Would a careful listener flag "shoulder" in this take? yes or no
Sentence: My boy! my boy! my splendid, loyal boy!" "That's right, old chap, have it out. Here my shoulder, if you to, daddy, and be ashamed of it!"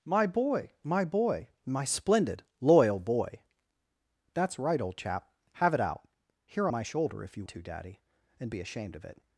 no